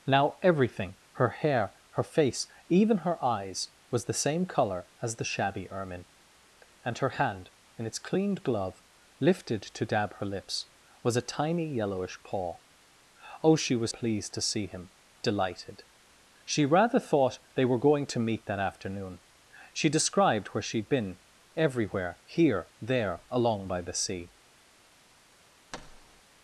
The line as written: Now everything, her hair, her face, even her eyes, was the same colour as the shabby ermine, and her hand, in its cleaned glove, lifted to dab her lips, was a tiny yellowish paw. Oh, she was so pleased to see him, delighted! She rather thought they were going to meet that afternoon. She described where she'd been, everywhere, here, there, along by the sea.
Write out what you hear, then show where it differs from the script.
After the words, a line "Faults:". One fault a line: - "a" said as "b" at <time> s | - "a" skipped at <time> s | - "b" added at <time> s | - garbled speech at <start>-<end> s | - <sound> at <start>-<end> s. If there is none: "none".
Now everything, her hair, her face, even her eyes, was the same colour as the shabby ermine, and her hand, in its cleaned glove, lifted to dab her lips, was a tiny yellowish paw. Oh, she was pleased to see him, delighted! She rather thought they were going to meet that afternoon. She described where she'd been, everywhere, here, there, along by the sea.
Faults:
- "so" skipped at 13.9 s
- thud at 25.7-26.2 s